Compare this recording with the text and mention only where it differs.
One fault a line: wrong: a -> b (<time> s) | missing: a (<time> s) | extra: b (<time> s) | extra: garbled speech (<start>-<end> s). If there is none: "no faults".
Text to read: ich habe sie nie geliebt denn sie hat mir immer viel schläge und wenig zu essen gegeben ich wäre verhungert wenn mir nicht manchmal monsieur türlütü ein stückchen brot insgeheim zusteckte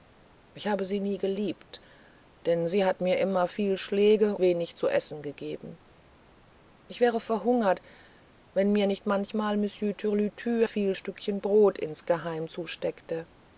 missing: und (4.3 s)
wrong: ein -> viel (10.6 s)